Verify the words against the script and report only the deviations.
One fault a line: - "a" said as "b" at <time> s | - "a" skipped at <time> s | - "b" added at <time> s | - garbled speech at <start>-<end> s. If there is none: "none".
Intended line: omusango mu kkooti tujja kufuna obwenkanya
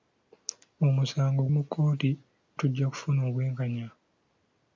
none